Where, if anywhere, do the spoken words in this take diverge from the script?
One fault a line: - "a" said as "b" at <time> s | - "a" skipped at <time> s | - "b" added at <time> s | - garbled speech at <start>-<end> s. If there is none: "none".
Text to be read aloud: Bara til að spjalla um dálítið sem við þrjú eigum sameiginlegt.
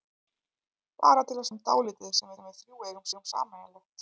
- "spjalla" skipped at 1.5 s
- "sem" added at 2.4 s
- "eigum" added at 3.1 s